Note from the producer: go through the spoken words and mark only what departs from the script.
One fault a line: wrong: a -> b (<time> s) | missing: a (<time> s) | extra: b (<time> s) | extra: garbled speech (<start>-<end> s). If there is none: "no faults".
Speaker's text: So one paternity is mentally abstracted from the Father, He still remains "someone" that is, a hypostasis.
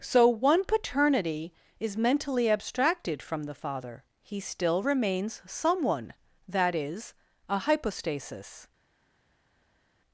no faults